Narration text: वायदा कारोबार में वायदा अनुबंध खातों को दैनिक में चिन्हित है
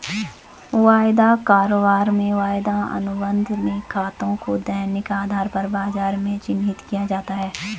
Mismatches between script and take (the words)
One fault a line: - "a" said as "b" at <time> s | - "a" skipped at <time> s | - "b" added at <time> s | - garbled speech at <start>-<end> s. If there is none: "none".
- "में" added at 3.6 s
- "आधार पर बाजार" added at 5.1 s
- "किया जाता" added at 6.9 s